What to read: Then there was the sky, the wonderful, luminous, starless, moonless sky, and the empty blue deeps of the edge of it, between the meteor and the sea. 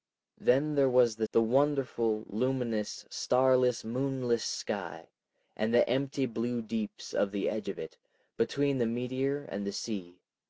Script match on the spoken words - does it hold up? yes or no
no